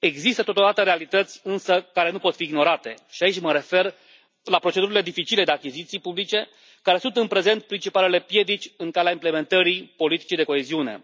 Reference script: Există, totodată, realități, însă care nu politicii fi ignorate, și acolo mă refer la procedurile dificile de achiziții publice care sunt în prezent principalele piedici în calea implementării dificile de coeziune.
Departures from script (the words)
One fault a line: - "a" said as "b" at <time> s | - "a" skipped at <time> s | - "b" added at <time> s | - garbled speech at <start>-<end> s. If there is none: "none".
- "politicii" said as "pot" at 2.2 s
- "acolo" said as "aici" at 3.2 s
- "dificile" said as "politicii" at 10.0 s